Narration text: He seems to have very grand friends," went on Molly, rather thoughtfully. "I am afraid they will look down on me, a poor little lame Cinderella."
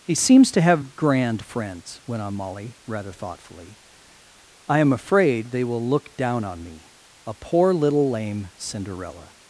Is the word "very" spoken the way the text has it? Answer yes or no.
no